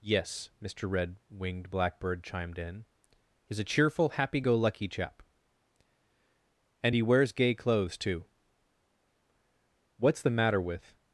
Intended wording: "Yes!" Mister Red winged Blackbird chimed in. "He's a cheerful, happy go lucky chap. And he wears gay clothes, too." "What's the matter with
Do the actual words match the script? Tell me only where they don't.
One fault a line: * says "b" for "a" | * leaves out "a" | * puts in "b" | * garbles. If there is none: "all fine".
all fine